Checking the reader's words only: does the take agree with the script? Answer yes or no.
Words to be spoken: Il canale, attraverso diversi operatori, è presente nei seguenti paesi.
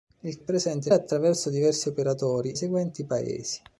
no